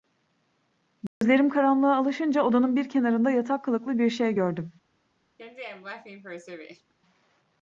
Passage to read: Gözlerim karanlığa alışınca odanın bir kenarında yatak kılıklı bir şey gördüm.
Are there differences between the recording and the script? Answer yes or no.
no